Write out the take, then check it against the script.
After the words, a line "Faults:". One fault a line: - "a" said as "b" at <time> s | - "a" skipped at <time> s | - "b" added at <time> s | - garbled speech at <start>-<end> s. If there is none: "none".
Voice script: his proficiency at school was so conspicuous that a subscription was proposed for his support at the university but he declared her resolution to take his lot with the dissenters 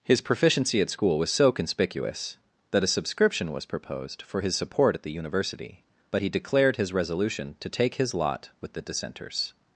his proficiency at school was so conspicuous that a subscription was proposed for his support at the university but he declared his resolution to take his lot with the dissenters
Faults:
- "her" said as "his" at 6.8 s